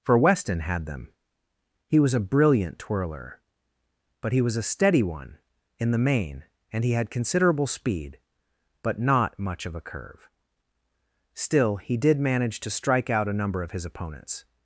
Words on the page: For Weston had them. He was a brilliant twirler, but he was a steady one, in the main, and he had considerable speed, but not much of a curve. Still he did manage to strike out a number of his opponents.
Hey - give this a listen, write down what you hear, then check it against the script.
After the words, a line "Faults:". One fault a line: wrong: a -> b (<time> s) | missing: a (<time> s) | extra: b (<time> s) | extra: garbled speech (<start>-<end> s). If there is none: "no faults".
For Weston had them. He was a brilliant twirler, but he was a steady one, in the main, and he had considerable speed, but not much of a curve. Still he did manage to strike out a number of his opponents.
Faults:
no faults